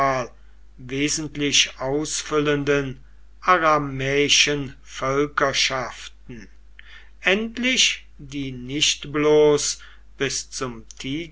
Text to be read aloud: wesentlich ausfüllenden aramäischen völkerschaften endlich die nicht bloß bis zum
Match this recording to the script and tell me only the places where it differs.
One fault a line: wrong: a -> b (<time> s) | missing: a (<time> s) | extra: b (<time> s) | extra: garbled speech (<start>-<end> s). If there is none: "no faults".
no faults